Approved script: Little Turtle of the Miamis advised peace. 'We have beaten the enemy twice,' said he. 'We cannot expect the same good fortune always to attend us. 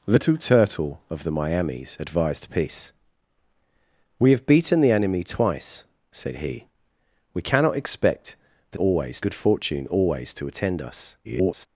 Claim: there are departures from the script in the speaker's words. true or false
true